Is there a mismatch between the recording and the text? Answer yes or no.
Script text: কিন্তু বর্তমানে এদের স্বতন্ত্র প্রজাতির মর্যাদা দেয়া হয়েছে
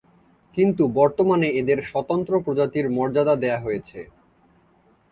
no